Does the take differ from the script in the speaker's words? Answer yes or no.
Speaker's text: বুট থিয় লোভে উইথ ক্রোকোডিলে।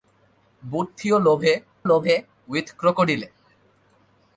yes